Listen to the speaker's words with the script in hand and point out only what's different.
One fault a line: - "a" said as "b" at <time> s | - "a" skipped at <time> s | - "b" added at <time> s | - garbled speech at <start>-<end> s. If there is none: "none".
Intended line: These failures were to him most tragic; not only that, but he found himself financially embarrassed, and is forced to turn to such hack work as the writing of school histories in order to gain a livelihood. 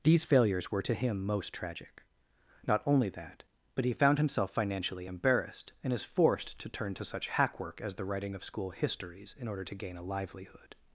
none